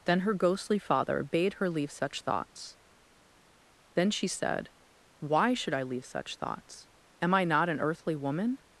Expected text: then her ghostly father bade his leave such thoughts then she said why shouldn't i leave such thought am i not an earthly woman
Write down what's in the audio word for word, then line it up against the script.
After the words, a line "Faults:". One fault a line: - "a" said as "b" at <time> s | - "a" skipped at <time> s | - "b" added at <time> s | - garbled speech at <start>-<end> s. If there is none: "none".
then her ghostly father bade her leave such thoughts then she said why should i leave such thoughts am i not an earthly woman
Faults:
- "his" said as "her" at 1.6 s
- "shouldn't" said as "should" at 5.5 s
- "thought" said as "thoughts" at 6.3 s